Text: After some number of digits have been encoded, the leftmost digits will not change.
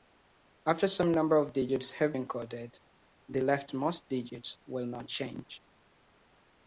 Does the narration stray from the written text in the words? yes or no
yes